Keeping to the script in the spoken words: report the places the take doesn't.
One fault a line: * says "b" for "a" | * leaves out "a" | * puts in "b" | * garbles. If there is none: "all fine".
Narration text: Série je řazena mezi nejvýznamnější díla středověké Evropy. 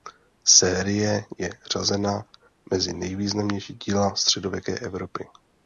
all fine